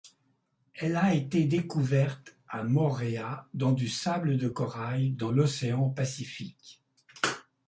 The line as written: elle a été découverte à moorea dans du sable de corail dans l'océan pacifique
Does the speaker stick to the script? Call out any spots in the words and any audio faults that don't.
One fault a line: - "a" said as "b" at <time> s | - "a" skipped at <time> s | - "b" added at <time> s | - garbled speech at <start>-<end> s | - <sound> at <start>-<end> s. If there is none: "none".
none